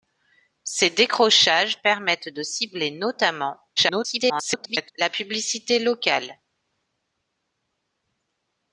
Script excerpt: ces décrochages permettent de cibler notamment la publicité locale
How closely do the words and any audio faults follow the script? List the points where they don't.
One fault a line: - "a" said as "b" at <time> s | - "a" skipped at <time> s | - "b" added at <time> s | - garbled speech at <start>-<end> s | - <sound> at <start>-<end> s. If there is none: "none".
- garbled speech at 3.8-4.9 s